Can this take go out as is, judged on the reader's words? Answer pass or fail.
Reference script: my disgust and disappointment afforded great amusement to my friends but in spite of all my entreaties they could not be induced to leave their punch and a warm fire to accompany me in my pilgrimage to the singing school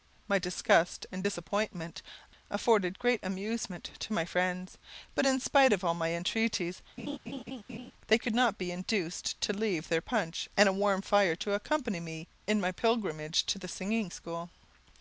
pass